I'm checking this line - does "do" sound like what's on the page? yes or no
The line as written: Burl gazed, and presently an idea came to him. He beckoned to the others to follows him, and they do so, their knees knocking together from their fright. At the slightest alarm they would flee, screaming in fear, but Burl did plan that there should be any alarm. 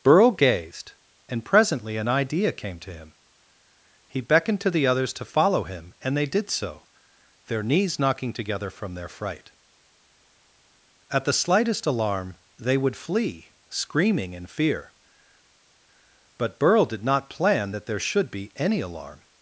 no